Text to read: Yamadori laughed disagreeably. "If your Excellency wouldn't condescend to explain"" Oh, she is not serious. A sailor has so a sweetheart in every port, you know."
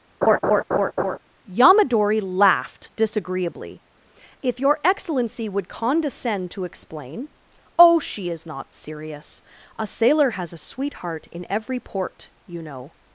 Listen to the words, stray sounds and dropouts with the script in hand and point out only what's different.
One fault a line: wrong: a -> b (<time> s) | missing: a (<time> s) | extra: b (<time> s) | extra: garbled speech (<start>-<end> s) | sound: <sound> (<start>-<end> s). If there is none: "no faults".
sound: laugh (0.2-1.2 s)
wrong: wouldn't -> would (5.5 s)
missing: so (10.5 s)